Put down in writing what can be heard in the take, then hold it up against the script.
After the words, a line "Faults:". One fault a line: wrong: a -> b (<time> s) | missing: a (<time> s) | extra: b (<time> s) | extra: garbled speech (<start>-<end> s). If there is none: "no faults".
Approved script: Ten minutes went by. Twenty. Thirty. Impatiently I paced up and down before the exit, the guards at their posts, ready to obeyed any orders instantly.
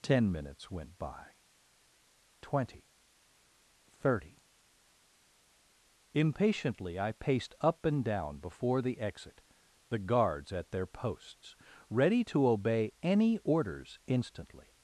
Ten minutes went by. Twenty. Thirty. Impatiently I paced up and down before the exit, the guards at their posts, ready to obey any orders instantly.
Faults:
wrong: obeyed -> obey (12.5 s)